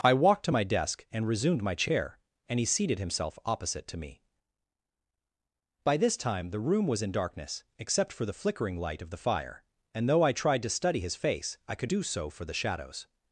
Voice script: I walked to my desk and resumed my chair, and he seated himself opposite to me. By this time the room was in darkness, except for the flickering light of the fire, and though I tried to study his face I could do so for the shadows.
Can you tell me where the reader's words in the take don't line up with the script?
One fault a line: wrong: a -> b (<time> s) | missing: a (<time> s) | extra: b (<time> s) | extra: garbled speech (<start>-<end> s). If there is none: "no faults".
no faults